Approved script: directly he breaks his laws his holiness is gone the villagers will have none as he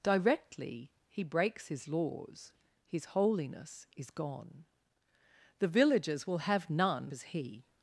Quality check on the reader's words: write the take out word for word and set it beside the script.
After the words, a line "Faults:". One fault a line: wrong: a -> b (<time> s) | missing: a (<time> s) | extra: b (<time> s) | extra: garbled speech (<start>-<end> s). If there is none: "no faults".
directly he breaks his laws his holiness is gone the villagers will have none as he
Faults:
no faults